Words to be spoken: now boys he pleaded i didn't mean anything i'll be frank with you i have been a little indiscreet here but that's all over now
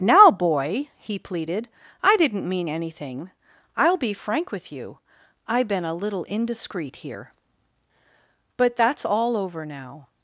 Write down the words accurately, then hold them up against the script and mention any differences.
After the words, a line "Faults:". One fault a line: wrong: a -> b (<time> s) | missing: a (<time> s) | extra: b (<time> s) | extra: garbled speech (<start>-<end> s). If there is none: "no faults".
now boy he pleaded i didn't mean anything i'll be frank with you i been a little indiscreet here but that's all over now
Faults:
wrong: boys -> boy (0.3 s)
missing: have (5.6 s)